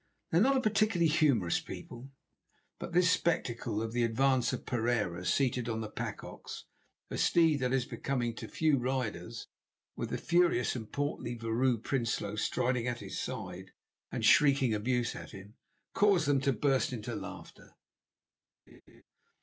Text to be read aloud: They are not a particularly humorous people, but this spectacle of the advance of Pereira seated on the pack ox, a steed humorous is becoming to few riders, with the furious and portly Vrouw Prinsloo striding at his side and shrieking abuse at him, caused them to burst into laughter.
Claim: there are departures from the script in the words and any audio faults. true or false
true